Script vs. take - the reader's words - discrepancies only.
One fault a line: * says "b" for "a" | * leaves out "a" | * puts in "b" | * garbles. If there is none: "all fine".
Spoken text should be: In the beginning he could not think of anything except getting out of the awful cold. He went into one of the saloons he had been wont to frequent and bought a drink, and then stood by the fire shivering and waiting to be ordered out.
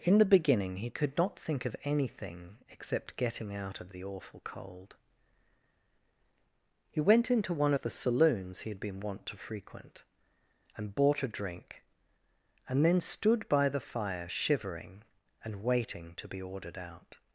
all fine